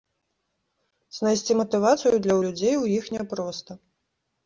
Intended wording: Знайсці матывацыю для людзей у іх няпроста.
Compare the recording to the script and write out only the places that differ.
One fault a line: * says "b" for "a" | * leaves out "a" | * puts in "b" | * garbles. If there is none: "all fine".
all fine